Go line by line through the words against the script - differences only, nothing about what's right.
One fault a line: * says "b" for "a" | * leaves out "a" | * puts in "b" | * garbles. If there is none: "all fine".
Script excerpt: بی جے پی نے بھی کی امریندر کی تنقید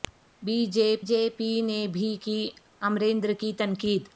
* puts in "جے"